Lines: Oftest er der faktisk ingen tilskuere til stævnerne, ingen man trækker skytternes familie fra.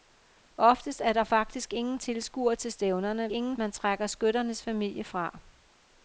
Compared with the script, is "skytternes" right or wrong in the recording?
right